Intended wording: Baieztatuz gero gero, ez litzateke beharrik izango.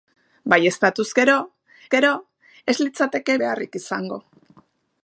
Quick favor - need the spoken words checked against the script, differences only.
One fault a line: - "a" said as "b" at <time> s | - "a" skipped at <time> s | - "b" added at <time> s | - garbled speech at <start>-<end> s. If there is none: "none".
none